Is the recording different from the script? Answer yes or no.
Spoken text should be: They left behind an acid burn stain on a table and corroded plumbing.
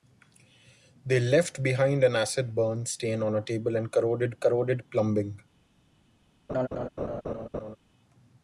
yes